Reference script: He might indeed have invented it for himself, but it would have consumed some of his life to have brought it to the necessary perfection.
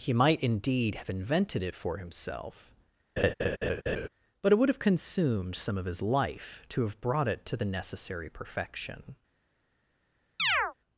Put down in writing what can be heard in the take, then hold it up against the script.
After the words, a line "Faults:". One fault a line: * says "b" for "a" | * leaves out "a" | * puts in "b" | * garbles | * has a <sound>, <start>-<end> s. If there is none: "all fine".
He might indeed have invented it for himself, but it would have consumed some of his life to have brought it to the necessary perfection.
Faults:
* has a laugh, 3.2-4.1 s
* has a chirp, 10.4-10.7 s